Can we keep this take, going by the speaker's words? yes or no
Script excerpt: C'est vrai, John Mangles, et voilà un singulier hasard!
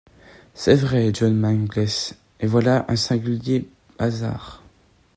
yes